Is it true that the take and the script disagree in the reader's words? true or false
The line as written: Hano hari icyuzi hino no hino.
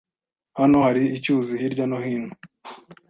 true